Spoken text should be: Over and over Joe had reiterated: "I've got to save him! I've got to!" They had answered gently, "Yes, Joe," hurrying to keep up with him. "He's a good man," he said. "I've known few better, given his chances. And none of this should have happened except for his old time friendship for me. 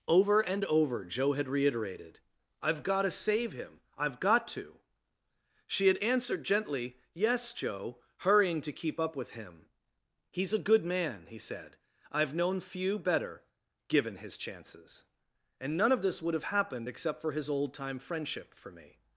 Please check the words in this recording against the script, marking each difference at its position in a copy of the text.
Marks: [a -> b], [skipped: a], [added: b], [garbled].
Over and over Joe had reiterated: "I've got to save him! I've got to!" [They -> She] had answered gently, "Yes, Joe," hurrying to keep up with him. "He's a good man," he said. "I've known few better, given his chances. And none of this [should -> would] have happened except for his old time friendship for me.